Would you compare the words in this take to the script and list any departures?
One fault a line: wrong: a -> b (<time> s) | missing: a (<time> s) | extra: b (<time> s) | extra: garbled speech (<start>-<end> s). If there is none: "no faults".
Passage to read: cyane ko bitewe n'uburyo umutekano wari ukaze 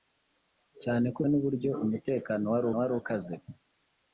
missing: bitewe (1.2 s)
extra: wari (2.8 s)